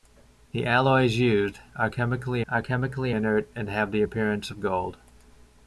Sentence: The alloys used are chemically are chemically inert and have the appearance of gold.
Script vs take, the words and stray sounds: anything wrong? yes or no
no